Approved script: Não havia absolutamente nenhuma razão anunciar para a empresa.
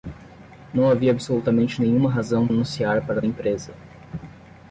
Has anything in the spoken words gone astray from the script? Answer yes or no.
no